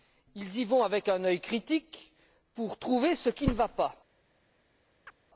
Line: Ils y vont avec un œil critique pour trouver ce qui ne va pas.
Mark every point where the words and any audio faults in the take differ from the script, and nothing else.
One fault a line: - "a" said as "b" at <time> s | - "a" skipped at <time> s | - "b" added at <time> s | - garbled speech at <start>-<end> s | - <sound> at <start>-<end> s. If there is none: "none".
- chirp at 5.1-5.2 s